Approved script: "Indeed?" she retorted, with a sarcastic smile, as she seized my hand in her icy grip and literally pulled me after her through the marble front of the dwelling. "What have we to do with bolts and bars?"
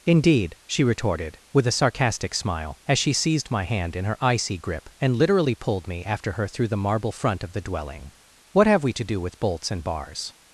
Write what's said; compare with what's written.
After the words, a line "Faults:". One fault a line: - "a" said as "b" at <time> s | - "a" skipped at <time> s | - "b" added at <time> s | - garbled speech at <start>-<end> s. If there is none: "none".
"Indeed?" she retorted, with a sarcastic smile, as she seized my hand in her icy grip and literally pulled me after her through the marble front of the dwelling. "What have we to do with bolts and bars?"
Faults:
none